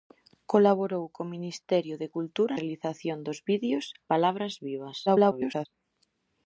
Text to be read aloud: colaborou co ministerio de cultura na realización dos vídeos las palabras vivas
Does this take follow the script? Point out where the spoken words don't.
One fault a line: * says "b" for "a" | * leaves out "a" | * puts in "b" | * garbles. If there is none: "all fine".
* leaves out "na"
* leaves out "las"
* garbles